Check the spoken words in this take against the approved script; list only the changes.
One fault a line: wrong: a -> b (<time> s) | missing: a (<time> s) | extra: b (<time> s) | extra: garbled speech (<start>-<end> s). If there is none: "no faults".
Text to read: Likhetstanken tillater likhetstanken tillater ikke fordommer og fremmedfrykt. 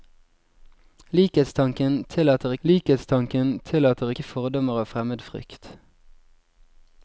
no faults